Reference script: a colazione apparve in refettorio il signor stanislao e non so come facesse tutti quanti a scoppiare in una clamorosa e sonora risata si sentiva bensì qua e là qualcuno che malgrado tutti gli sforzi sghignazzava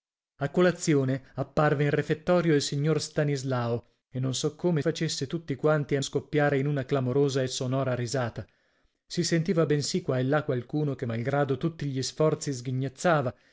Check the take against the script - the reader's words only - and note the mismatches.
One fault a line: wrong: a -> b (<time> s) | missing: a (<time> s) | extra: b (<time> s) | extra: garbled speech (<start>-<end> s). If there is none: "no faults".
no faults